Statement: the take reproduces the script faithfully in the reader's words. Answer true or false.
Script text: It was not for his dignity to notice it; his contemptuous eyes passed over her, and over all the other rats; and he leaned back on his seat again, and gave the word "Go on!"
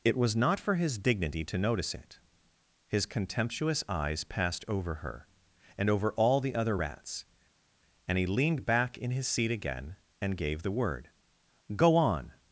false